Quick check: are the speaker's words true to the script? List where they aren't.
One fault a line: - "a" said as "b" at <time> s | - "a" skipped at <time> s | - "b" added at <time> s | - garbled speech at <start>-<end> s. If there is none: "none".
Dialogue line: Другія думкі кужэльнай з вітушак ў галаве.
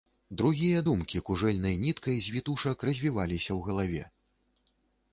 - "ніткай" added at 1.8 s
- "развіваліся" added at 2.9 s